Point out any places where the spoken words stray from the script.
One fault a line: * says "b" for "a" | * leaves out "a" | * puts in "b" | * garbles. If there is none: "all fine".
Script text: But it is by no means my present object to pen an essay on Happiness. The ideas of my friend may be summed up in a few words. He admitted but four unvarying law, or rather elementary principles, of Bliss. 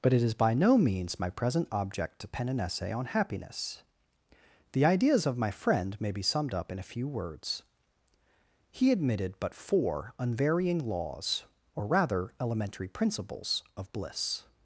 * says "laws" for "law"